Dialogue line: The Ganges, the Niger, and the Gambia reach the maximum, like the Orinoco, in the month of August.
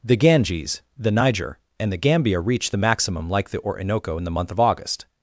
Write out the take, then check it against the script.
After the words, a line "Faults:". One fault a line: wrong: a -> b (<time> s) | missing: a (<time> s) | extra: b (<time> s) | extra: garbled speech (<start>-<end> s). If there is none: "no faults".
The Ganges, the Niger, and the Gambia reach the maximum, like the Orinoco, in the month of August.
Faults:
no faults